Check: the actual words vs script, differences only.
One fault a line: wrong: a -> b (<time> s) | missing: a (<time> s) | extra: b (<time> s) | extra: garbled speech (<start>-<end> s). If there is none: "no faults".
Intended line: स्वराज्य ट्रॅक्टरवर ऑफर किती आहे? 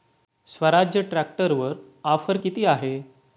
no faults